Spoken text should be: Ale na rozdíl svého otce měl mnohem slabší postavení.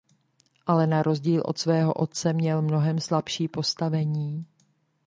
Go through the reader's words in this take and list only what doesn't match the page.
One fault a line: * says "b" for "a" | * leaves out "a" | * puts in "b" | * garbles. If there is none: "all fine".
* puts in "od"